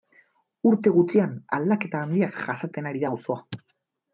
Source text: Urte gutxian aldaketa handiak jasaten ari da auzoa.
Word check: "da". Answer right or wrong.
right